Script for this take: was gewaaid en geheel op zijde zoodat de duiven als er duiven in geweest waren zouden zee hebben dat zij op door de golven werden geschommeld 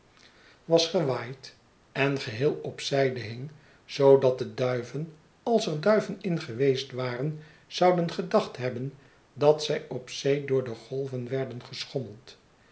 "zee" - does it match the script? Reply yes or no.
no